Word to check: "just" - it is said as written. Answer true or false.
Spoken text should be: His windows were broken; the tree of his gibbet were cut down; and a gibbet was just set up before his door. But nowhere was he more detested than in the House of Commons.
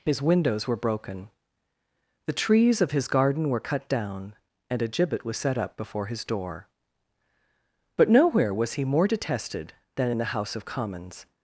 false